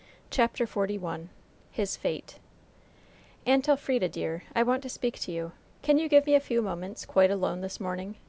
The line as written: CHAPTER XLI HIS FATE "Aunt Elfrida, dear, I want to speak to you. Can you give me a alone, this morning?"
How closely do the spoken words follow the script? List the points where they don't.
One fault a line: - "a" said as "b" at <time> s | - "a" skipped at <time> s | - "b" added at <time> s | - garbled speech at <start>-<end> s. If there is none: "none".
- "few moments quite" added at 6.4 s